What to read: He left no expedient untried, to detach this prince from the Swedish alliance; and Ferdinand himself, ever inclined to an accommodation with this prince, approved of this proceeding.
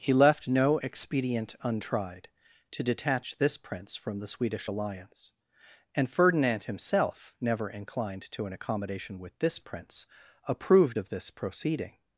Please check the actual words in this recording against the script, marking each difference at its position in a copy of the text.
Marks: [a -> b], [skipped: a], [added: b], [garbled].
He left no expedient untried, to detach this prince from the Swedish alliance; and Ferdinand himself, [ever -> never] inclined to an accommodation with this prince, approved of this proceeding.